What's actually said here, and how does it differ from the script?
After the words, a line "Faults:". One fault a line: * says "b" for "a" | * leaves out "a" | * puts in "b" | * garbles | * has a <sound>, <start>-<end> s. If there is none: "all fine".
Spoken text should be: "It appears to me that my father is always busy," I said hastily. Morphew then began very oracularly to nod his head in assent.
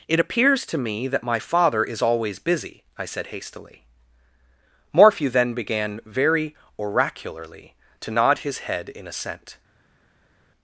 "It appears to me that my father is always busy," I said hastily. Morphew then began very oracularly to nod his head in assent.
Faults:
all fine